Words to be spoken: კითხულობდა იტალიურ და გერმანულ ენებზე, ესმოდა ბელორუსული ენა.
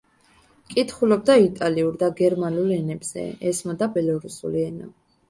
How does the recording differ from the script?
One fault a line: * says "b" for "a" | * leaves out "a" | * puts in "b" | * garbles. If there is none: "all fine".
all fine